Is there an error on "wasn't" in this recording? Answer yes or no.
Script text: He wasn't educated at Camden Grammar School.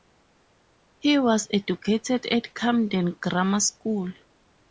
yes